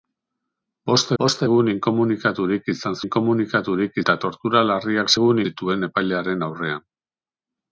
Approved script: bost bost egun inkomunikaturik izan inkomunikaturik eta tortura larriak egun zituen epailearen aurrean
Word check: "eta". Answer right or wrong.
right